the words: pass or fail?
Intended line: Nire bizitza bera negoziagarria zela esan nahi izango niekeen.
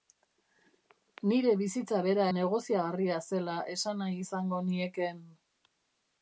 pass